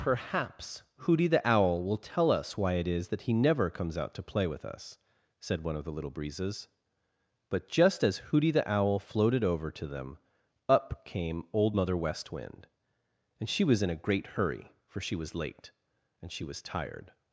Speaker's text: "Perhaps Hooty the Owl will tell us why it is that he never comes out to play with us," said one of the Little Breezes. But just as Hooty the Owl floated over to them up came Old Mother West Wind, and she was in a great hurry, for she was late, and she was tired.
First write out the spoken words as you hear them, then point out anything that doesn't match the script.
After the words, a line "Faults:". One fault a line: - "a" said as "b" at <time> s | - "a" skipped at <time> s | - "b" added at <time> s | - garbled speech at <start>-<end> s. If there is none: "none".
"Perhaps Hooty the Owl will tell us why it is that he never comes out to play with us," said one of the Little Breezes. But just as Hooty the Owl floated over to them up came Old Mother West Wind, and she was in a great hurry, for she was late, and she was tired.
Faults:
none